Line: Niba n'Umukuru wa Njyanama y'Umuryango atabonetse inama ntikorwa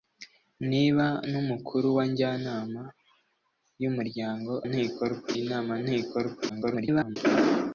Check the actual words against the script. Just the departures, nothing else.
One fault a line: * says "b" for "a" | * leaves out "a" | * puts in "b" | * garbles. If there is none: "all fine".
* says "ntikorwa" for "atabonetse"
* garbles